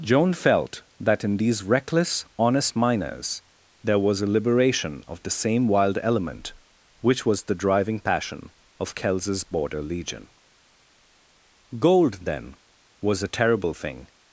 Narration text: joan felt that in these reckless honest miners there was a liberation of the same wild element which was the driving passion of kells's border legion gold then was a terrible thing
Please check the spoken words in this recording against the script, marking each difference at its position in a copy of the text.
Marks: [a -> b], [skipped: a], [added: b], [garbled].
joan felt that in these reckless honest miners there was a liberation of the same wild element which was the driving passion of kells's border legion gold then was a terrible thing